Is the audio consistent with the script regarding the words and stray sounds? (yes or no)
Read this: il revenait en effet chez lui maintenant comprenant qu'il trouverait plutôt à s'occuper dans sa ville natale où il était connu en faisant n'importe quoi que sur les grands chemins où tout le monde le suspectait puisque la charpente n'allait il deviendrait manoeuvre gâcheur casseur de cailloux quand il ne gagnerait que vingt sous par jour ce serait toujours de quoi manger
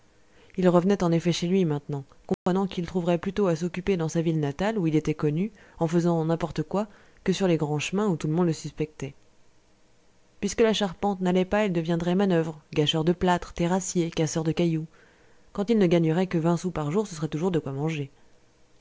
no